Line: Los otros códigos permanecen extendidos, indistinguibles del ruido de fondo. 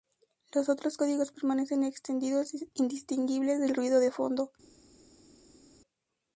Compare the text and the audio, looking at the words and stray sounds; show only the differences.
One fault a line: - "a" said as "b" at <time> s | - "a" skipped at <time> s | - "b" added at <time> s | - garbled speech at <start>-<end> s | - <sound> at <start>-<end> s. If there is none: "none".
none